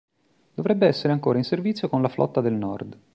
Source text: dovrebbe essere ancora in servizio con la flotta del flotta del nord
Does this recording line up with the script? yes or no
no